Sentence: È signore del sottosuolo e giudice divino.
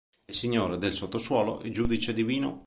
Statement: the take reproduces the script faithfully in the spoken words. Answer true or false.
true